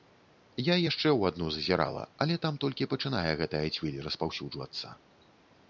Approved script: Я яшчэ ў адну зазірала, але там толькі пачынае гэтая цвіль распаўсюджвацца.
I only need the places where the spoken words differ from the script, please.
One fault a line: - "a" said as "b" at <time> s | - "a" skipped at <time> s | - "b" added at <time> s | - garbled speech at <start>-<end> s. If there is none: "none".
none